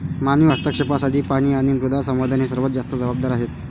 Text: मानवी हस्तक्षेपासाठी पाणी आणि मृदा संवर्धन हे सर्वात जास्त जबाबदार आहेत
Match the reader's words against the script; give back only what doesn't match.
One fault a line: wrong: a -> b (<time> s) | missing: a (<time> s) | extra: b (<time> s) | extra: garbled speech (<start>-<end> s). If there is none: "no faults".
no faults